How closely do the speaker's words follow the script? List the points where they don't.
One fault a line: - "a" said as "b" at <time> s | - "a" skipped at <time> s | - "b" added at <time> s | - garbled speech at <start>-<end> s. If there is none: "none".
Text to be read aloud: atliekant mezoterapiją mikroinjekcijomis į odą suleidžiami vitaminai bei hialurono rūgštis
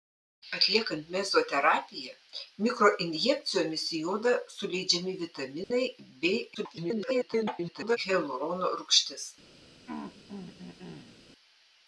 - garbled speech at 6.5-8.0 s